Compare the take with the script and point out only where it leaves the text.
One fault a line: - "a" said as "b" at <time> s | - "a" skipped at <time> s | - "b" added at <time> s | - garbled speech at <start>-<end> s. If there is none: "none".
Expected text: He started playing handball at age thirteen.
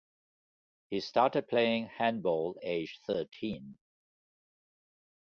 - "at" skipped at 2.6 s